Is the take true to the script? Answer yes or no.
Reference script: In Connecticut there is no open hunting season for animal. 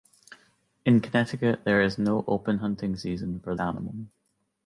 yes